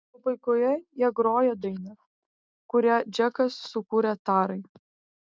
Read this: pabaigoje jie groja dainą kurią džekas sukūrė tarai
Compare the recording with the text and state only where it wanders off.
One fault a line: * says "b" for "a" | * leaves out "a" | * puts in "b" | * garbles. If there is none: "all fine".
all fine